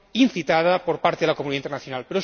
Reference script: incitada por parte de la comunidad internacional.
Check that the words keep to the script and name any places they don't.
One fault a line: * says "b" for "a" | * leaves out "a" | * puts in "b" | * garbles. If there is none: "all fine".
all fine